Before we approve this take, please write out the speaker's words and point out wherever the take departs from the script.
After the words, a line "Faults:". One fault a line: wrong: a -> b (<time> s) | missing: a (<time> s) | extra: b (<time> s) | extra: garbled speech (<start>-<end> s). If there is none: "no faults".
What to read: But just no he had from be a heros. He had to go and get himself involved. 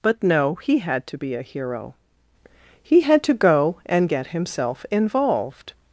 But no he had to be a hero. He had to go and get himself involved.
Faults:
missing: just (0.2 s)
wrong: from -> to (1.1 s)
wrong: heros -> hero (1.4 s)